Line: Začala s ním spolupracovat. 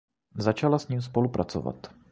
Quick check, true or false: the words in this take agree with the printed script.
true